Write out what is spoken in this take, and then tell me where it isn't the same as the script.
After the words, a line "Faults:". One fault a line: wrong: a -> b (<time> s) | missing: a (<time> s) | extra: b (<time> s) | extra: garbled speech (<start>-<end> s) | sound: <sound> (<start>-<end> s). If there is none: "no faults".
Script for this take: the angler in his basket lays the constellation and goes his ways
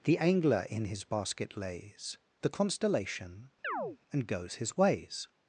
the angler in his basket lays the constellation and goes his ways
Faults:
sound: chirp (3.6-4.0 s)